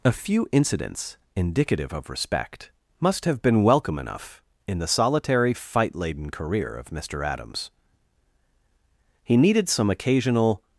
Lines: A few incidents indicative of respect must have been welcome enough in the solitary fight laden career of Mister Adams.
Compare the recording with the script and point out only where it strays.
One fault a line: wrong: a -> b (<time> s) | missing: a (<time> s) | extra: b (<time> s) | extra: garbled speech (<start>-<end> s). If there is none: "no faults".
extra: He needed some occasional (9.3 s)